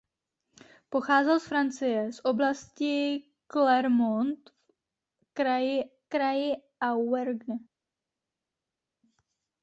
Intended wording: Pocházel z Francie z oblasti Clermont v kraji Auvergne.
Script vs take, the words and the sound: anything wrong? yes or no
yes